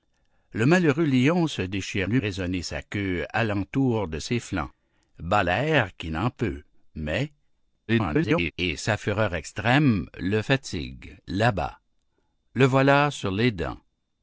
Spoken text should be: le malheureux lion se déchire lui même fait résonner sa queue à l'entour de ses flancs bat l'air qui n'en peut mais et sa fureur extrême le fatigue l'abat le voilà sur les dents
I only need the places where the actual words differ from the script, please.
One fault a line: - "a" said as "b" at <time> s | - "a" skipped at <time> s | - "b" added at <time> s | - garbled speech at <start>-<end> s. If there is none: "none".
- "même fait" skipped at 2.2 s
- garbled speech at 7.9-8.5 s